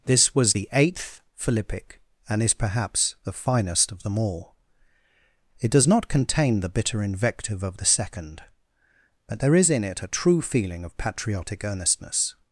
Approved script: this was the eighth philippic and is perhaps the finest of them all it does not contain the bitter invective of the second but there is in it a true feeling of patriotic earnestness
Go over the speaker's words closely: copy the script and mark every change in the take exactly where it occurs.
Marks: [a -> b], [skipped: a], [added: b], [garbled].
this was the eighth philippic and is perhaps the finest of them all it does not contain the bitter invective of the second but there is in it a true feeling of patriotic earnestness